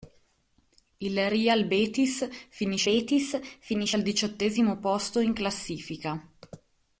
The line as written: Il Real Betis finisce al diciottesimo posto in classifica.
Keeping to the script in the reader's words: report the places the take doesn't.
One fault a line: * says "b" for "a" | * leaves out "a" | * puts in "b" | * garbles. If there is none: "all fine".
* puts in "Betis finisce"